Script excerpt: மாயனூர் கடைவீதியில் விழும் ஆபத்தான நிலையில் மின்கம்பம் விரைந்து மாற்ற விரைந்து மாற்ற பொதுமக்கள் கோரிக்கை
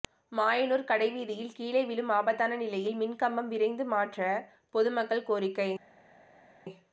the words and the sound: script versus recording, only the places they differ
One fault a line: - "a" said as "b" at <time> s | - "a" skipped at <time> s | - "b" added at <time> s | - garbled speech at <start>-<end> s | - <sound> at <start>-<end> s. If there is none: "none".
- "கீழே" added at 1.5 s
- "விரைந்து மாற்ற" skipped at 4.2 s